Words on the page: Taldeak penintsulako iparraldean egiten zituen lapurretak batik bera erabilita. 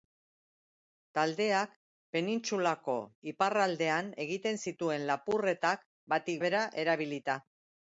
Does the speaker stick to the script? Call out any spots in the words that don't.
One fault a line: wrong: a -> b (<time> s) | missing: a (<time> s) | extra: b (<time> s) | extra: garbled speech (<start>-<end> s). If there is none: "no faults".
no faults